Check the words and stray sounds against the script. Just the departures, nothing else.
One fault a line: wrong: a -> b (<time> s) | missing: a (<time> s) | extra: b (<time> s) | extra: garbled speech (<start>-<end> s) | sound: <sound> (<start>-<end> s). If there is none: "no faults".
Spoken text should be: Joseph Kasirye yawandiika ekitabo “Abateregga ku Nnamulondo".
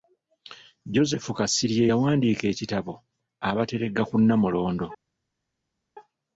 no faults